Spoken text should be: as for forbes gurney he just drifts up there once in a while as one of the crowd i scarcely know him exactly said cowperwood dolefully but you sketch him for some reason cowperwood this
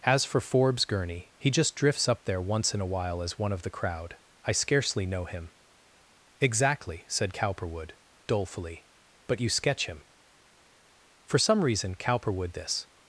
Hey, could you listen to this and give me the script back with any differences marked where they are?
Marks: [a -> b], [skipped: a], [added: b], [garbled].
as for forbes gurney he just drifts up there once in a while as one of the crowd i scarcely know him exactly said cowperwood dolefully but you sketch him for some reason cowperwood this